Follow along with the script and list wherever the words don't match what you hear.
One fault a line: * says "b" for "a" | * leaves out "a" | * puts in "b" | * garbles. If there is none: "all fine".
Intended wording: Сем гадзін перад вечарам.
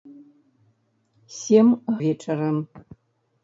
* leaves out "гадзін перад"